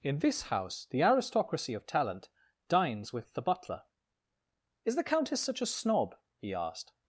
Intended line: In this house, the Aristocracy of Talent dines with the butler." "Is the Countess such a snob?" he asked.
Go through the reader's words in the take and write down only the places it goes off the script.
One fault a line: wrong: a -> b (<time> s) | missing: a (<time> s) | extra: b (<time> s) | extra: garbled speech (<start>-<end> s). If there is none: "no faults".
no faults